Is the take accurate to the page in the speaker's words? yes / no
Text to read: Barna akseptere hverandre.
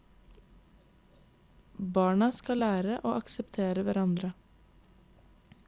no